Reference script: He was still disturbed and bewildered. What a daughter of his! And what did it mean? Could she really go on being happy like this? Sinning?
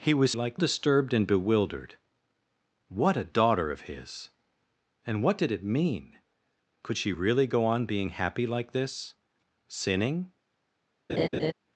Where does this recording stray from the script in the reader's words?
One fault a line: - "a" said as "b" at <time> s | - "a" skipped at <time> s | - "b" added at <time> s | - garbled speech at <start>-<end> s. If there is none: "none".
- "still" said as "like" at 0.3 s